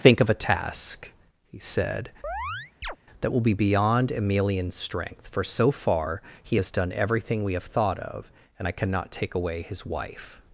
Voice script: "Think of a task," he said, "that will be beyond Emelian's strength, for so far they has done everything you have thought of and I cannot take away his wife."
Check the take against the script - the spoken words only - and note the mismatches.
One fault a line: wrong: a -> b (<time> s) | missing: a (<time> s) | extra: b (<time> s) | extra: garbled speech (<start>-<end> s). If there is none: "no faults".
wrong: they -> he (6.4 s)
wrong: you -> we (7.4 s)